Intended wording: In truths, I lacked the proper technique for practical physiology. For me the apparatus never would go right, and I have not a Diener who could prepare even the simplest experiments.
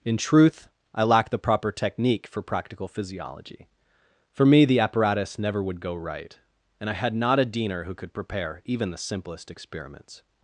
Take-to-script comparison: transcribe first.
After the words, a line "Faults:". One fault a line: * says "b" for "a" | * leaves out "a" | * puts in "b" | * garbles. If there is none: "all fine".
In truth, I lacked the proper technique for practical physiology. For me the apparatus never would go right, and I had not a Diener who could prepare even the simplest experiments.
Faults:
* says "truth" for "truths"
* says "had" for "have"